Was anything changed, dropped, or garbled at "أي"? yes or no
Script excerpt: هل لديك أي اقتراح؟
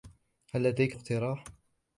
yes